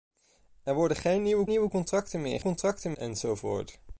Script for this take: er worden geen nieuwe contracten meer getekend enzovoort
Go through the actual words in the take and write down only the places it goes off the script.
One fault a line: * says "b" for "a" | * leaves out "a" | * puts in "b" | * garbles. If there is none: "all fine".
* puts in "nieuwe"
* says "contracten" for "getekend"